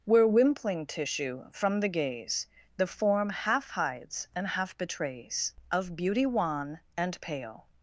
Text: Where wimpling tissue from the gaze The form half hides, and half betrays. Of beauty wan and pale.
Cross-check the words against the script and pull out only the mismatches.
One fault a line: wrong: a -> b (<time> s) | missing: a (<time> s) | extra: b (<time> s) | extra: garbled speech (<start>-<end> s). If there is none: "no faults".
no faults